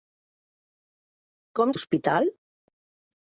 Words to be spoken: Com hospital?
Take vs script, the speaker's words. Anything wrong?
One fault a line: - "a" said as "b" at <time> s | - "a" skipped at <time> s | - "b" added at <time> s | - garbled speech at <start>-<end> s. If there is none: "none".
none